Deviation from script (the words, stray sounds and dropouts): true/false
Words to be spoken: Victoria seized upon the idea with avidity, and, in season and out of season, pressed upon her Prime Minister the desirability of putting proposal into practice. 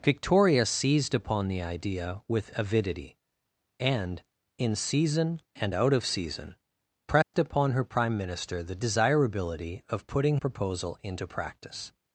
true